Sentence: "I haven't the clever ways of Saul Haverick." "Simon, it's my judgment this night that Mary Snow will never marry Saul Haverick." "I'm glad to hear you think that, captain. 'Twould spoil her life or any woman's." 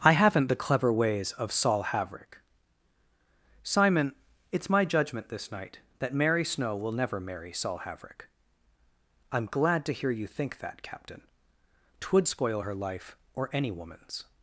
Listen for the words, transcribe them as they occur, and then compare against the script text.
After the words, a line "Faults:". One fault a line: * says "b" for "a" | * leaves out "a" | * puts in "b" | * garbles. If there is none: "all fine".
"I haven't the clever ways of Saul Haverick." "Simon, it's my judgment this night that Mary Snow will never marry Saul Haverick." "I'm glad to hear you think that, captain. 'Twould spoil her life or any woman's."
Faults:
all fine